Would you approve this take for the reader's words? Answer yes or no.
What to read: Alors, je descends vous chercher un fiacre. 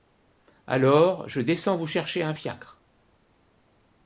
yes